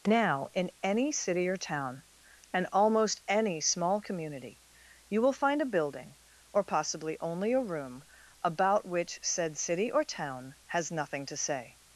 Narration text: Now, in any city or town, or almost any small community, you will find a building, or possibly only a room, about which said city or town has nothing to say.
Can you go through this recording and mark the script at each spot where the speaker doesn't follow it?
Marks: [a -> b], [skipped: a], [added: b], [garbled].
Now, in any city or town, [or -> and] almost any small community, you will find a building, or possibly only a room, about which said city or town has nothing to say.